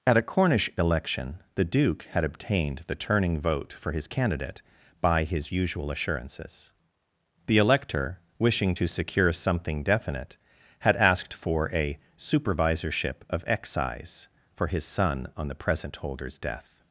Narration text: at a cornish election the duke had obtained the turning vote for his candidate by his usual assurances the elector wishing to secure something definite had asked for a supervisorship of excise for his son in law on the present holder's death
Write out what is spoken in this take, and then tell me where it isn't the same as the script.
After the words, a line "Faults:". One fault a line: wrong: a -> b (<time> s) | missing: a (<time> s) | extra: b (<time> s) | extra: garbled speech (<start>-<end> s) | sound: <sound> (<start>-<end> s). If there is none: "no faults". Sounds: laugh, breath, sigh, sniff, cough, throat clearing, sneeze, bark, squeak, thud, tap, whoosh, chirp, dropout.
at a cornish election the duke had obtained the turning vote for his candidate by his usual assurances the elector wishing to secure something definite had asked for a supervisorship of excise for his son on the present holder's death
Faults:
missing: in law (15.3 s)